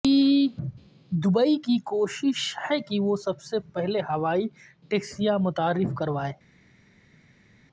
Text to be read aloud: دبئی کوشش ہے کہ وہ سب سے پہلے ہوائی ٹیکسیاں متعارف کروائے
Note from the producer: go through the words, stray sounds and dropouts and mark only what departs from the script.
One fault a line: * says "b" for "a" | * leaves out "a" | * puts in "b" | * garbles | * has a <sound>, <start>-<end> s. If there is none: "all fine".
* puts in "کی"